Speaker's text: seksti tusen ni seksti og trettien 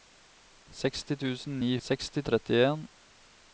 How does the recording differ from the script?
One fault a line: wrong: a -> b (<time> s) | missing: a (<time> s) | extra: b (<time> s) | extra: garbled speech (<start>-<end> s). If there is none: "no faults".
no faults